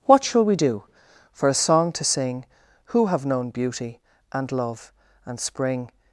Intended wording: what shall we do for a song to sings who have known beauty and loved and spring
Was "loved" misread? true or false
true